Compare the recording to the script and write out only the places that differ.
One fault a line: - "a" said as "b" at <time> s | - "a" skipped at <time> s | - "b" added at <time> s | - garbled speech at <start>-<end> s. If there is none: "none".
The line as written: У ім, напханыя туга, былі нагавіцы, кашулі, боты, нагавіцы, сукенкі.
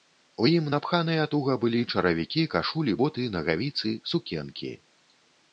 - "нагавіцы" said as "чаравікі" at 1.9 s